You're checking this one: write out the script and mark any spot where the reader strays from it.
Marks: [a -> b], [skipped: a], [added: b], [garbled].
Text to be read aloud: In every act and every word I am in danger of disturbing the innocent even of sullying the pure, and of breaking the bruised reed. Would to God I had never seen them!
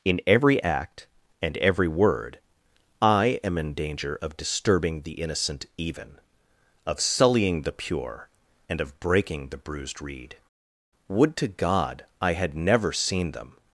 In every act and every word I am in danger of disturbing the innocent even of sullying the pure, and of breaking the bruised reed. Would to God I had never seen them!